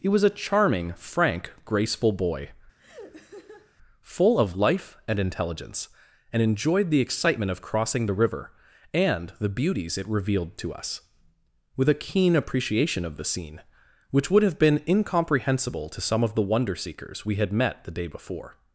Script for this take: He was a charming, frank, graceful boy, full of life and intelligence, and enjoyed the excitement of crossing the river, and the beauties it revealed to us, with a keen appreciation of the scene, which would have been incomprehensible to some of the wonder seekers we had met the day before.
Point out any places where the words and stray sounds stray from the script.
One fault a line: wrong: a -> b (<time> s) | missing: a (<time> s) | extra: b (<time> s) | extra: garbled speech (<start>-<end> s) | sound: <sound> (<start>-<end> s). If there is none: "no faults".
sound: laugh (2.8-3.7 s)